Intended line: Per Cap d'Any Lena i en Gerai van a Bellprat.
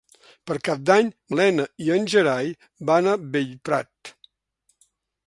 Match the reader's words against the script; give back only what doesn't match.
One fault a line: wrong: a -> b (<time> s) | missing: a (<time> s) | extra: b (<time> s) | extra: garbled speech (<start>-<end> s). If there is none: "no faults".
no faults